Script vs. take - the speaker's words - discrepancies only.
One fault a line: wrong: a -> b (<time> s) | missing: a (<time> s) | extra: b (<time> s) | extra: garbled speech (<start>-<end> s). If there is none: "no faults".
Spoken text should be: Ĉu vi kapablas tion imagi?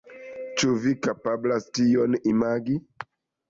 no faults